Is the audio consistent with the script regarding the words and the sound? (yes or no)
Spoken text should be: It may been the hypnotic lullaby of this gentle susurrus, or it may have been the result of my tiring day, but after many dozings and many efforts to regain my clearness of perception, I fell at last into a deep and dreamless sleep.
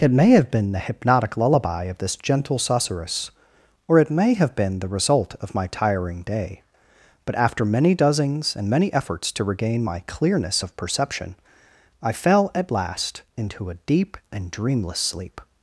no